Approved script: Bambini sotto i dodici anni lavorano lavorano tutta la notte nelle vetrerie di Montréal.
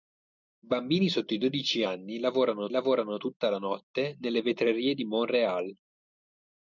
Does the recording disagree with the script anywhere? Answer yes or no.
no